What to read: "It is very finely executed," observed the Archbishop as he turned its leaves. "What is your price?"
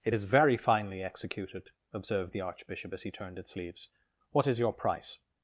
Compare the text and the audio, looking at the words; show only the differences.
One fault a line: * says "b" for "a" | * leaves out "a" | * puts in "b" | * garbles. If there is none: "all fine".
all fine